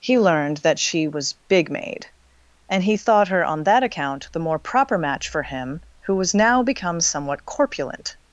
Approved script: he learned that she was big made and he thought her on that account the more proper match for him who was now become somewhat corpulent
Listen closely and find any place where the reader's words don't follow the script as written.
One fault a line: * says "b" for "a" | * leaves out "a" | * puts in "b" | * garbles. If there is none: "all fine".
all fine